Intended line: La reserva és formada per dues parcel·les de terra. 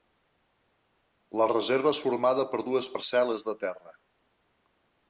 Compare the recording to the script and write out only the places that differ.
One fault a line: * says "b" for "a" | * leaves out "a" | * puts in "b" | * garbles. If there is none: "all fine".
all fine